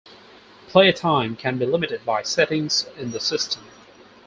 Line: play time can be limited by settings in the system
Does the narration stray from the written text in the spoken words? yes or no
no